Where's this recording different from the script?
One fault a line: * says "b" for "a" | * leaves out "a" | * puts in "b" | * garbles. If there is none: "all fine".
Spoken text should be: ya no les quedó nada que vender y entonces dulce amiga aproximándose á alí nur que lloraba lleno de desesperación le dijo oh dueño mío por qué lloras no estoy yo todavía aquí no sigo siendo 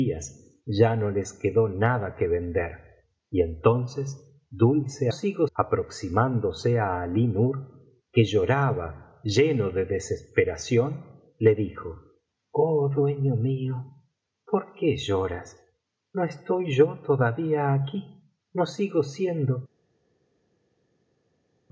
* says "sigo" for "amiga"